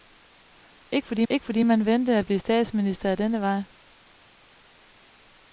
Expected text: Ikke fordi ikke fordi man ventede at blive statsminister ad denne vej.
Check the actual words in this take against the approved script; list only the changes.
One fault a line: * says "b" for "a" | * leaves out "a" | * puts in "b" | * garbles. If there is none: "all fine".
all fine